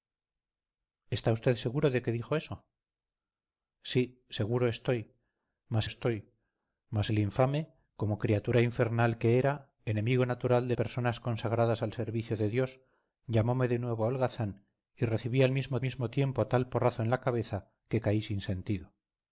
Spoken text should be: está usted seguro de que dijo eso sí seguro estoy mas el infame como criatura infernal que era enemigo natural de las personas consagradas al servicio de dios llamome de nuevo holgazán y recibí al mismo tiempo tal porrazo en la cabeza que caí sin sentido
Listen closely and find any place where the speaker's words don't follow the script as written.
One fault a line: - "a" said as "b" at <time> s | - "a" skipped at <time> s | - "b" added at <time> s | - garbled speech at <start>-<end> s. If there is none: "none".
- "estoy mas" added at 5.8 s
- "las" skipped at 10.7 s
- "mismo" added at 15.8 s